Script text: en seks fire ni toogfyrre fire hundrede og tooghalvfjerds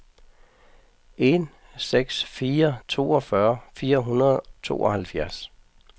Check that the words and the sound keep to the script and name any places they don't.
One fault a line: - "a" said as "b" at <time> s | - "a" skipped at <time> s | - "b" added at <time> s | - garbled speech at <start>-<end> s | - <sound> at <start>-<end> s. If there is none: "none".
- "ni" skipped at 2.7 s
- "og" skipped at 4.4 s